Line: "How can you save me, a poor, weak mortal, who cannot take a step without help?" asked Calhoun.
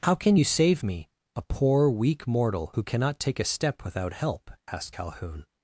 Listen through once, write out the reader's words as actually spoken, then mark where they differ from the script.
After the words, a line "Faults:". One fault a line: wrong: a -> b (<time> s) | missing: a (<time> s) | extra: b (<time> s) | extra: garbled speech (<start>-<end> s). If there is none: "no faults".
"How can you save me, a poor, weak mortal, who cannot take a step without help?" asked Calhoun.
Faults:
no faults